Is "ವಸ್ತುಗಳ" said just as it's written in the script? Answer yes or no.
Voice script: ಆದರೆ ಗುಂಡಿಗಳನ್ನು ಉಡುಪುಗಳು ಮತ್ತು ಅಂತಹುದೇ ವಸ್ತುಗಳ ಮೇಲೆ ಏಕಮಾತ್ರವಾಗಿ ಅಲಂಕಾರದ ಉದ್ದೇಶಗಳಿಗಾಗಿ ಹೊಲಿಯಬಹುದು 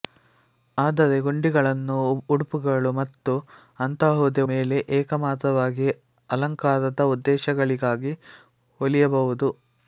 no